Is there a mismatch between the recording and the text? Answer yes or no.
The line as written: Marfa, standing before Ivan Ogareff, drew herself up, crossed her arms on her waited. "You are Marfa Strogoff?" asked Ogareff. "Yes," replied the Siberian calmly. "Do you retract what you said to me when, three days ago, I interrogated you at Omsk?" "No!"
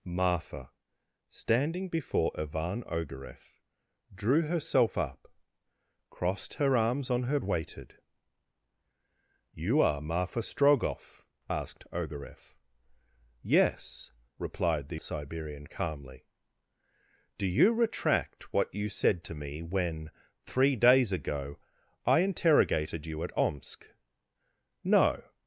no